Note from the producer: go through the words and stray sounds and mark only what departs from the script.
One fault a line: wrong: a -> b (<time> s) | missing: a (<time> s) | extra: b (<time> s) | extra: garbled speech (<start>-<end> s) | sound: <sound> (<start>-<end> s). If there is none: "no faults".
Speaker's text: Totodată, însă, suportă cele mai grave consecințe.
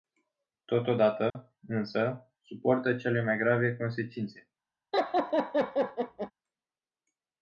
sound: dropout (1.3-1.4 s)
sound: laugh (4.9-6.3 s)